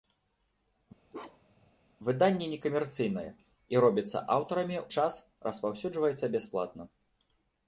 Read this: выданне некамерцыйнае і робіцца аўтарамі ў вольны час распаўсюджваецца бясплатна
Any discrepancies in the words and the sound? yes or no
yes